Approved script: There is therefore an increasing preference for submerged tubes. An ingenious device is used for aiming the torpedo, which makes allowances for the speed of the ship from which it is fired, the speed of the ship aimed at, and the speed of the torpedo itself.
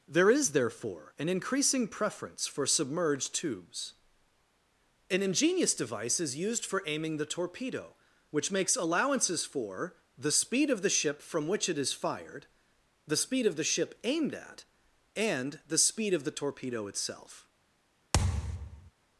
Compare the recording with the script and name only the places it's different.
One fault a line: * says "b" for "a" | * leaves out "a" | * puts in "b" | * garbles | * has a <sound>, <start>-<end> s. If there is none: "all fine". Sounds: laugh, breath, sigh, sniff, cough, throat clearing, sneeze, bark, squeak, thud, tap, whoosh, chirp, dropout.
* has a thud, 18.1-18.9 s